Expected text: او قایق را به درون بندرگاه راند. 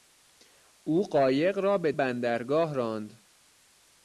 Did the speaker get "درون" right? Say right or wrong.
wrong